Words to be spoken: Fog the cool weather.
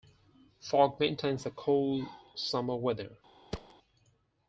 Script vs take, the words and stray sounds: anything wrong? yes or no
yes